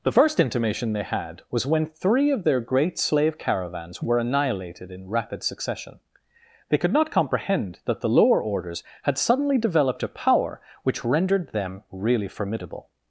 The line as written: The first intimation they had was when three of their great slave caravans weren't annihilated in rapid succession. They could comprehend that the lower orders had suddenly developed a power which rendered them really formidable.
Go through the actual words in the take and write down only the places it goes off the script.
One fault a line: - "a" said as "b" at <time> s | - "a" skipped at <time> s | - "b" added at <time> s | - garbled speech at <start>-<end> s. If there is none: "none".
- "weren't" said as "were" at 4.0 s
- "not" added at 6.9 s